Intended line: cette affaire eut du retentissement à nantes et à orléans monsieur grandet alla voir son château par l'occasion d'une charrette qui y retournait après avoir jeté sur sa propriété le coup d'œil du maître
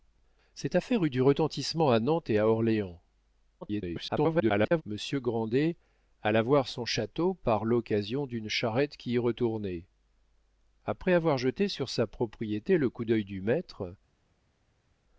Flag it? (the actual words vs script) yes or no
yes